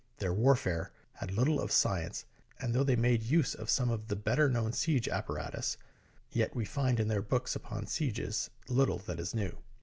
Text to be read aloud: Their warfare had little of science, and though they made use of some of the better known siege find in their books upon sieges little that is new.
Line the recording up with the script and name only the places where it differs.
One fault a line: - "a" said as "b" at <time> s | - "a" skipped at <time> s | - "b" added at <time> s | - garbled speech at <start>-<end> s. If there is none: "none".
- "apparatus yet we" added at 5.1 s